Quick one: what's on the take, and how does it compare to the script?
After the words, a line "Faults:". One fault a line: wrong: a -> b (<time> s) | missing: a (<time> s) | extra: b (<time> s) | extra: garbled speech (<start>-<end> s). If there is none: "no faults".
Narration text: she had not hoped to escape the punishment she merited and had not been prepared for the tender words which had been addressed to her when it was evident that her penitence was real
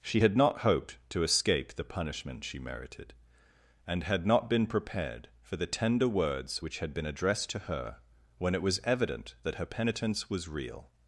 she had not hoped to escape the punishment she merited and had not been prepared for the tender words which had been addressed to her when it was evident that her penitence was real
Faults:
no faults